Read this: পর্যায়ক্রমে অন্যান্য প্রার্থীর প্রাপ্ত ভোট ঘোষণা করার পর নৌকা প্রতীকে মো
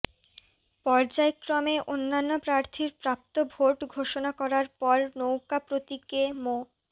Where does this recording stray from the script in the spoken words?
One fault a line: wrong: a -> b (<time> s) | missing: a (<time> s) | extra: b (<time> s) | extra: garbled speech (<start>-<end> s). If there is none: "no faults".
no faults